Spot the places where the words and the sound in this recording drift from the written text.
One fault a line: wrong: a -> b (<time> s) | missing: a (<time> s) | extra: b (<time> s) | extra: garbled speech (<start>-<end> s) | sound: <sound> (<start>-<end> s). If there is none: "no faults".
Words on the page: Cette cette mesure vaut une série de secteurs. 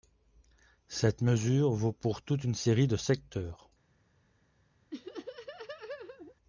missing: cette (1.2 s)
extra: pour toute (1.9 s)
sound: laugh (4.9-6.4 s)